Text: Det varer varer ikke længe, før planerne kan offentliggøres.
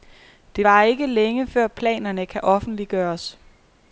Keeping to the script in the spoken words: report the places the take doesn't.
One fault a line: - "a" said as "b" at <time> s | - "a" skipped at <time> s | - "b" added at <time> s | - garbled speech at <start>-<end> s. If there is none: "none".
- "varer" skipped at 0.8 s